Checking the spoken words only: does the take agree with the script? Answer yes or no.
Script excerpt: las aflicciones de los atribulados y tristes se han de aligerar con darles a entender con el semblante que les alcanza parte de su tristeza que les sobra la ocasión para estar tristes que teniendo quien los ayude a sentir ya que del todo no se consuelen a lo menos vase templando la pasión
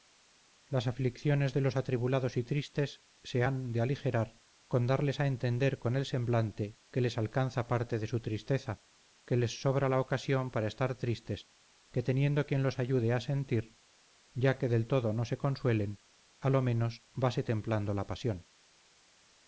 yes